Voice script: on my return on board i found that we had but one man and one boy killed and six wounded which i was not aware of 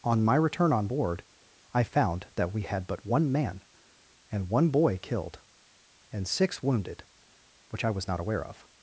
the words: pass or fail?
pass